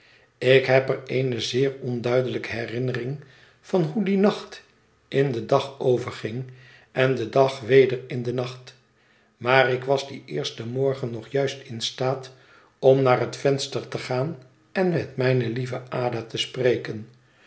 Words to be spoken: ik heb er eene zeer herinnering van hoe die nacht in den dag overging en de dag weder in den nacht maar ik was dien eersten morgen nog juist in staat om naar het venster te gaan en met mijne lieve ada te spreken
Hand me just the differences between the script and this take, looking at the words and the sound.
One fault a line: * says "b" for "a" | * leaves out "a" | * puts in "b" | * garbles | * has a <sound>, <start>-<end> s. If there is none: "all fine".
* puts in "onduidelijke"